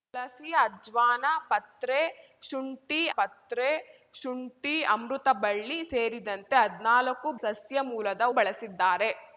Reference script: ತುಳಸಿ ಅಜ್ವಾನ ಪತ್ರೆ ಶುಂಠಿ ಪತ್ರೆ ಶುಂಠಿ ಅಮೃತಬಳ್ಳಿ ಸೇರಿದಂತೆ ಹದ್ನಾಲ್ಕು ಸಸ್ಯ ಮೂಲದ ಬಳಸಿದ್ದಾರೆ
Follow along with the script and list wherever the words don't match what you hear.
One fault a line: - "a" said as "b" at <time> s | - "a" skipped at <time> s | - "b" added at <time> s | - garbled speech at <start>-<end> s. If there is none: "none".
none